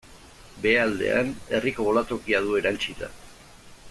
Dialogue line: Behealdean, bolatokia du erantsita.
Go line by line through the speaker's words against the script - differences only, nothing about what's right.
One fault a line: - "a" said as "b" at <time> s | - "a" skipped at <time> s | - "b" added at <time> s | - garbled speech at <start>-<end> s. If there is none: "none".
- "herriko" added at 1.6 s